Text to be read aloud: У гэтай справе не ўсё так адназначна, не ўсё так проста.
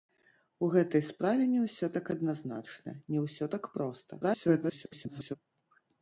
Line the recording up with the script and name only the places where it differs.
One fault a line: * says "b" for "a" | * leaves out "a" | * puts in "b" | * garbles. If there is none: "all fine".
* garbles